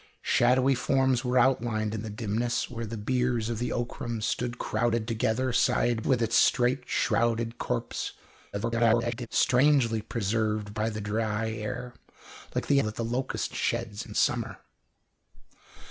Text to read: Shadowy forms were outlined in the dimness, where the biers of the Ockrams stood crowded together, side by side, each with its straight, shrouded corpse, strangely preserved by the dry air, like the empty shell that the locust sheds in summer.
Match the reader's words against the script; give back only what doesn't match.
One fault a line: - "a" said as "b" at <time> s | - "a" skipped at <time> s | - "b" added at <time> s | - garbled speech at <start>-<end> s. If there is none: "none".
- "by side each" skipped at 6.0 s
- garbled speech at 8.5-9.3 s
- "empty shell" skipped at 12.8 s